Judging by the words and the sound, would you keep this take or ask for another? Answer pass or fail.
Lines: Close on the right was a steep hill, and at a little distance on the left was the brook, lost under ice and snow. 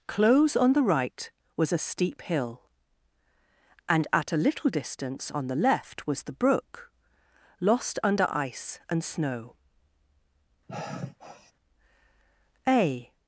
fail